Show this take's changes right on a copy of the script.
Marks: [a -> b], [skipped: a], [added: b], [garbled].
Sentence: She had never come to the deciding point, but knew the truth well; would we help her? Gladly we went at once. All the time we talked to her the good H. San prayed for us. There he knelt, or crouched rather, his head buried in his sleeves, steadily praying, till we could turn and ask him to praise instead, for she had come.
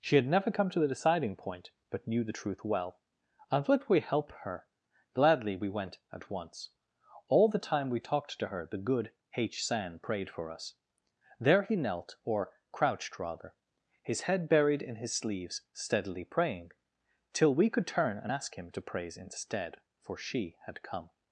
She had never come to the deciding point, but knew the truth well; [added: and] would we help her? Gladly we went at once. All the time we talked to her the good H. San prayed for us. There he knelt, or crouched rather, his head buried in his sleeves, steadily praying, till we could turn and ask him to praise instead, for she had come.